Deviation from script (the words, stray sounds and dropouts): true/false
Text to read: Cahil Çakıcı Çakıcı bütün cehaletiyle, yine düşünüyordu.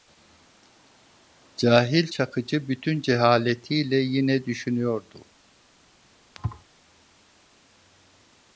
true